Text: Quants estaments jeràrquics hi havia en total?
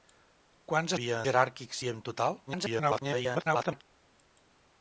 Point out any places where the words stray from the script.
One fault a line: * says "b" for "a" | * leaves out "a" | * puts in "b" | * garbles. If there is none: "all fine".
* says "havia" for "estaments"
* leaves out "havia"
* garbles